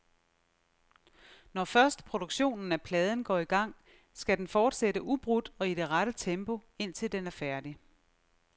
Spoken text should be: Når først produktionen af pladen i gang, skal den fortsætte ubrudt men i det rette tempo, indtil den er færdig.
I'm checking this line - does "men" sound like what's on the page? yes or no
no